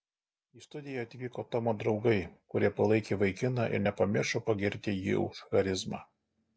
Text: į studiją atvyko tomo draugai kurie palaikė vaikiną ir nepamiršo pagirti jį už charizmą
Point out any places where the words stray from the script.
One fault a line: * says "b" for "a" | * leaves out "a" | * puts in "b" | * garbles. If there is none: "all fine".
all fine